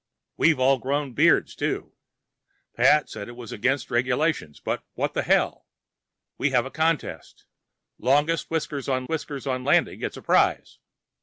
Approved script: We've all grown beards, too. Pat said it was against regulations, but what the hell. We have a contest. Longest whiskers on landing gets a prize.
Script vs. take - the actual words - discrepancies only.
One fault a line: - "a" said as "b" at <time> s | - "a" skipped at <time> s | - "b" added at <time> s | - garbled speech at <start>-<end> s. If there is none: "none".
- "whiskers on" added at 9.1 s